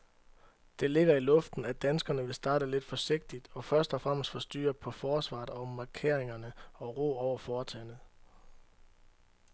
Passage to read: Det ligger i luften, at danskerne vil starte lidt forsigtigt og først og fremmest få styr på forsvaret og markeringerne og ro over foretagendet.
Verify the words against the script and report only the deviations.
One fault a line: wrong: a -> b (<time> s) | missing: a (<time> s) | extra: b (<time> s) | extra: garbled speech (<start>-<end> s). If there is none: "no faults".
no faults